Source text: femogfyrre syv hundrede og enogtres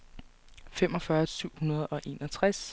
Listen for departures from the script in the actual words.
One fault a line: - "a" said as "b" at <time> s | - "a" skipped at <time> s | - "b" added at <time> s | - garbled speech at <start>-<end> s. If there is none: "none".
none